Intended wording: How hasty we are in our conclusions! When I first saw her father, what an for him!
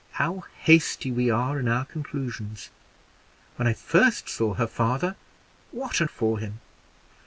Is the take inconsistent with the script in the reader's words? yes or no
no